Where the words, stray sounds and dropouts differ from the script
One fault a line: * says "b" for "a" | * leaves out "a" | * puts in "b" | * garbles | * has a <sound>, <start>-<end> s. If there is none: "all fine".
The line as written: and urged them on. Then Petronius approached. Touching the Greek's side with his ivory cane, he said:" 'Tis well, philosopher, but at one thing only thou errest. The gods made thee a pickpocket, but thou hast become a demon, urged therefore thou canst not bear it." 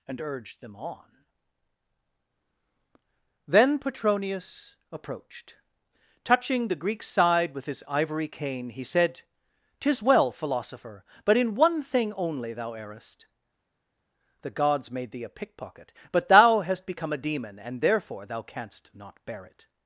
* says "in" for "at"
* says "and" for "urged"